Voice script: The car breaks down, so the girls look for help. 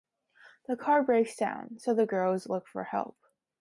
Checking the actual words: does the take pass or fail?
pass